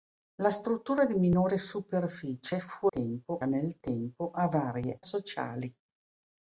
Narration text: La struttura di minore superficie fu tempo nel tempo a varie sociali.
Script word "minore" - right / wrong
right